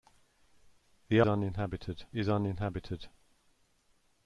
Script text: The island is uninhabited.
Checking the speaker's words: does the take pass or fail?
fail